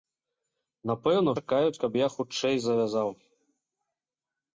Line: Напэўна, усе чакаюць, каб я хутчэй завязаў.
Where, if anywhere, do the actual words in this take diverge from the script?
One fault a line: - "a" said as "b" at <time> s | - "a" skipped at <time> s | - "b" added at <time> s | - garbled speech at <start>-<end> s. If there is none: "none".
- "усе" skipped at 1.3 s